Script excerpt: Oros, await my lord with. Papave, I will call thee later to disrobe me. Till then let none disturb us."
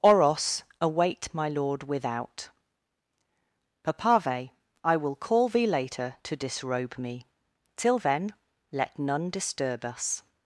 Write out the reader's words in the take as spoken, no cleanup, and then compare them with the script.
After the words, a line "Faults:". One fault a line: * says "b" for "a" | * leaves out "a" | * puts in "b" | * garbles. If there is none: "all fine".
Oros, await my lord without. Papave, I will call thee later to disrobe me. Till then let none disturb us."
Faults:
* says "without" for "with"